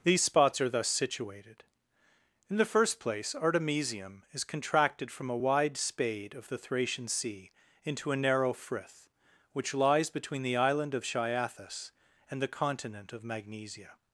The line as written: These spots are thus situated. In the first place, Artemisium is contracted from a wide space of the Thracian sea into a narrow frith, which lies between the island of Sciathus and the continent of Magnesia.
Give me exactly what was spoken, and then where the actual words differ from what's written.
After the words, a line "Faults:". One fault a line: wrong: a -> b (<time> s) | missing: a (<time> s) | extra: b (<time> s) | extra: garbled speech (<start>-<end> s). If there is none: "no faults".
These spots are thus situated. In the first place, Artemisium is contracted from a wide spade of the Thracian sea into a narrow frith, which lies between the island of Sciathus and the continent of Magnesia.
Faults:
wrong: space -> spade (5.8 s)